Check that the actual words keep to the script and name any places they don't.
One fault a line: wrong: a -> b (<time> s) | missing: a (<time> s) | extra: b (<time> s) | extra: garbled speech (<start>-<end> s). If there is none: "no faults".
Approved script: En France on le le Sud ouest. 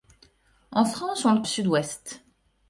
no faults